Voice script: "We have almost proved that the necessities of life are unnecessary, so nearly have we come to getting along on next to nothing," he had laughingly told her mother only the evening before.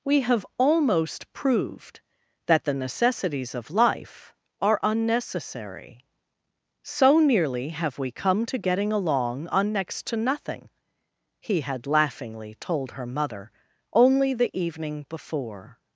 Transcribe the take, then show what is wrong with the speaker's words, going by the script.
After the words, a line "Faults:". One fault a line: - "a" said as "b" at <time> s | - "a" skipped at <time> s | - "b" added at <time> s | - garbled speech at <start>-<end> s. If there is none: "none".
"We have almost proved that the necessities of life are unnecessary, so nearly have we come to getting along on next to nothing," he had laughingly told her mother only the evening before.
Faults:
none